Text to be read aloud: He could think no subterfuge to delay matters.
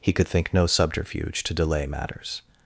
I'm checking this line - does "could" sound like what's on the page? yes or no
yes